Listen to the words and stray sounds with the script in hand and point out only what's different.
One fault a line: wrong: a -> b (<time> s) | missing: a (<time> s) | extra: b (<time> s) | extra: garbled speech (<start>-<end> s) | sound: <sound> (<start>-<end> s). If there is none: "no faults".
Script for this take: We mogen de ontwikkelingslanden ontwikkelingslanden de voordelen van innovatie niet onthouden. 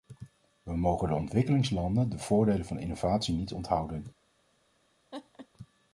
missing: ontwikkelingslanden (2.1 s)
sound: laugh (5.1-5.5 s)